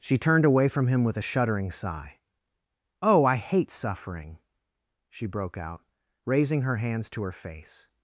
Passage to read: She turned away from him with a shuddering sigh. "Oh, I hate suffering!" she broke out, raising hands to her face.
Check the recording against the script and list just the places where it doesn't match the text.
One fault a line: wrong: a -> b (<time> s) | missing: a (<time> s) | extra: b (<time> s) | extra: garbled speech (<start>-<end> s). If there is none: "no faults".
extra: her (6.6 s)